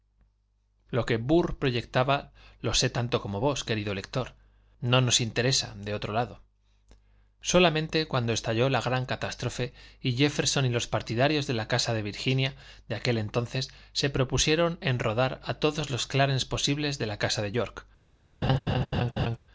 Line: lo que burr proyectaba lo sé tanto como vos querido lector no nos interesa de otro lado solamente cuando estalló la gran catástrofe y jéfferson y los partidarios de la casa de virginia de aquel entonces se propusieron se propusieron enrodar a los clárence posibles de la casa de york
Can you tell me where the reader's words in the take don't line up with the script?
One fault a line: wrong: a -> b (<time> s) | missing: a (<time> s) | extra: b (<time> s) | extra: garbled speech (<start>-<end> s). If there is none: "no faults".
missing: se propusieron (14.8 s)
extra: todos (15.6 s)